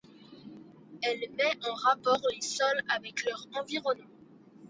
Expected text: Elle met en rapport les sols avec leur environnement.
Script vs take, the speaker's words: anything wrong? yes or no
no